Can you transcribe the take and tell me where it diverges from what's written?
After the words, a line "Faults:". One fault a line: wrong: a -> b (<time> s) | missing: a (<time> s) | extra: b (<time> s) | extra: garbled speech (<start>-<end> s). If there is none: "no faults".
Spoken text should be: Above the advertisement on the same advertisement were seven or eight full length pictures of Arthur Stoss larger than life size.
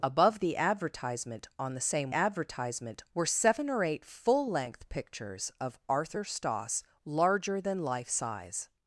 Above the advertisement on the same advertisement were seven or eight full length pictures of Arthur Stoss larger than life size.
Faults:
no faults